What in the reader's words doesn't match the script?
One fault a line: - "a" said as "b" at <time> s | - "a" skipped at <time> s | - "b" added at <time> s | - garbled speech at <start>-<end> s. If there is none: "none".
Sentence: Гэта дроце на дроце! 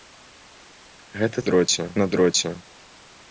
none